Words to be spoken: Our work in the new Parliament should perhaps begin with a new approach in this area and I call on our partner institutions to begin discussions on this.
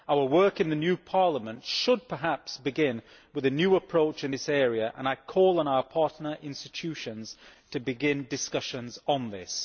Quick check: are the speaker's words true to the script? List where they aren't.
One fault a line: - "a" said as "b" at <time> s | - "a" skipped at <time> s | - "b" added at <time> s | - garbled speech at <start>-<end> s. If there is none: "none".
none